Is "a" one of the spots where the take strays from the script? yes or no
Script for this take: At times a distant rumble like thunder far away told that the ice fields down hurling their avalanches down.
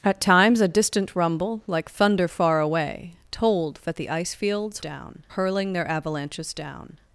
no